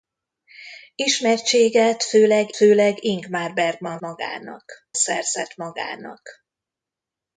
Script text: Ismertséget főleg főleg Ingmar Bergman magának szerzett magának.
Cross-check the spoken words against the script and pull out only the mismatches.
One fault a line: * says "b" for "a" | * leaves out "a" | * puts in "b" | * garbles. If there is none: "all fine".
all fine